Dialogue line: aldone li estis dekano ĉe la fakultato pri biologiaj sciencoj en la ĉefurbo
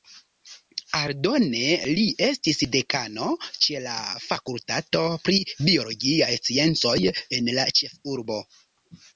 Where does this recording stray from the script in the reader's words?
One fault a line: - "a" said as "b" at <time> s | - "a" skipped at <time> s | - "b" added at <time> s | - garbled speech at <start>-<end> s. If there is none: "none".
none